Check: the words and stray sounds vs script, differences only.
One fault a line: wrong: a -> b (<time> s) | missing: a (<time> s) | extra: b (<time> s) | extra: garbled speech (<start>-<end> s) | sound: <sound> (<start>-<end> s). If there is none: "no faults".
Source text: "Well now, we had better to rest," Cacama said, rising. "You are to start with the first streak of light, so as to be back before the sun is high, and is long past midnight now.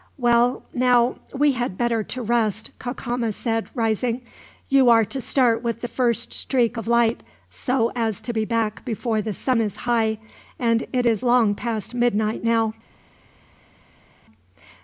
extra: it (10.9 s)